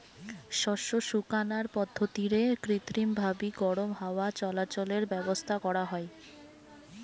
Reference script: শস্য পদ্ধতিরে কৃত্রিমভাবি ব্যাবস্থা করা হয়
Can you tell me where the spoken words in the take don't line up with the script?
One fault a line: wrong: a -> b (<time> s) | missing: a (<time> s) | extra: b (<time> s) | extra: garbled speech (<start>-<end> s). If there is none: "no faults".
extra: শুকানার (1.1 s)
extra: গরম হাওয়া চলাচলের (3.6 s)